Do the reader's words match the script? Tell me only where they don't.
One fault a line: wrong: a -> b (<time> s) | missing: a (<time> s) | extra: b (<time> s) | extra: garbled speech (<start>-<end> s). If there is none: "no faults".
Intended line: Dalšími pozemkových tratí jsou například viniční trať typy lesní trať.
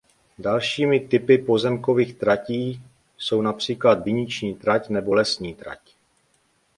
extra: typy (1.0 s)
wrong: typy -> nebo (4.9 s)